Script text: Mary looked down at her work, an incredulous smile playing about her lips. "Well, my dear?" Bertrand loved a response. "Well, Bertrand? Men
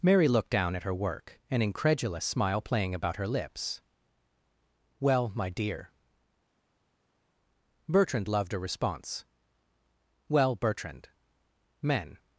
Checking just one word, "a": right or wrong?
right